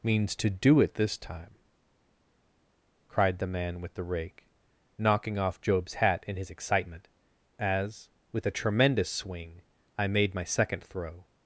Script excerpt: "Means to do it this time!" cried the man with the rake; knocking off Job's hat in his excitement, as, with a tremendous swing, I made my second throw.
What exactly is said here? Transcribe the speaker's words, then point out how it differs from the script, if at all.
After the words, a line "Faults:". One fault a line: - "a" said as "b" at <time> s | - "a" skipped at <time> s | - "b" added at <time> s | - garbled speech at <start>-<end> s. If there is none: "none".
"Means to do it this time!" cried the man with the rake; knocking off Job's hat in his excitement, as, with a tremendous swing, I made my second throw.
Faults:
none